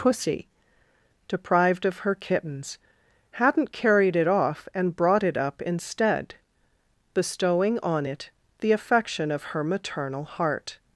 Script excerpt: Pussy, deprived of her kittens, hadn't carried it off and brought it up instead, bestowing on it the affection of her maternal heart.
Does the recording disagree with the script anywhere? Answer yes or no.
no